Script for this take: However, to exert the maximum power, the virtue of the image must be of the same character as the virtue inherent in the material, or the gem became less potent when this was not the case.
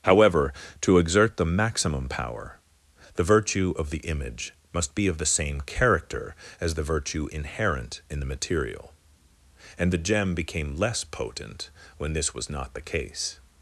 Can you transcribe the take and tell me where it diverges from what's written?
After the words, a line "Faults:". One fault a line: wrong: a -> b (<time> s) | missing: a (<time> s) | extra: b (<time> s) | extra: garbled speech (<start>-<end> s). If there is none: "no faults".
However, to exert the maximum power, the virtue of the image must be of the same character as the virtue inherent in the material, and the gem became less potent when this was not the case.
Faults:
wrong: or -> and (9.8 s)